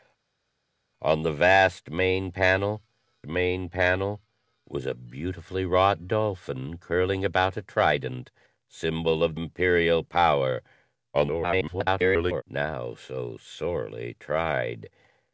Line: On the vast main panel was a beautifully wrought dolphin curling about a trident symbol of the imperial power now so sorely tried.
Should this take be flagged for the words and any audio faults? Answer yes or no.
yes